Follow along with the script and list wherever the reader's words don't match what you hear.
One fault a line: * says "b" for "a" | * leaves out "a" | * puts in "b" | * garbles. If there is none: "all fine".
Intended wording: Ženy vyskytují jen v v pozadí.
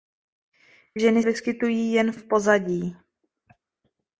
all fine